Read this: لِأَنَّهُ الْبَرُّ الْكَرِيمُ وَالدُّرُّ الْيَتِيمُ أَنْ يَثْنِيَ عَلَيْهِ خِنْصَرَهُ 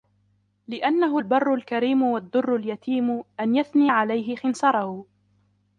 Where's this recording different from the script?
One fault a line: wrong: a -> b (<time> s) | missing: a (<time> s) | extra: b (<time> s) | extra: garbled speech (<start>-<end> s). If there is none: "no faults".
no faults